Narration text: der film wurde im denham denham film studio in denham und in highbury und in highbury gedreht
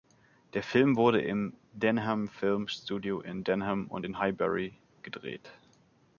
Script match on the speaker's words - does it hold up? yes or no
no